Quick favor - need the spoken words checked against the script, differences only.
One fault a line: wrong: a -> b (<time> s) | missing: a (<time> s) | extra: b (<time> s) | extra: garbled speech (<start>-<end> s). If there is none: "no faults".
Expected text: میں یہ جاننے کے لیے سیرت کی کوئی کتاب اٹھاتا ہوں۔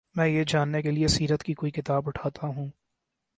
no faults